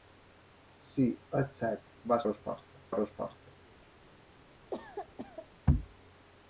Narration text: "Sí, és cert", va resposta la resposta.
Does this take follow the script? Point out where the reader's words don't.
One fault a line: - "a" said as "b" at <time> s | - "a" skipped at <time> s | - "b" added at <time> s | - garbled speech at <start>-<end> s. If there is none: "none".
none